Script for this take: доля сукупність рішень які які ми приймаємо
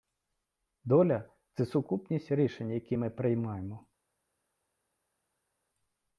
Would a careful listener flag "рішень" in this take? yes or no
no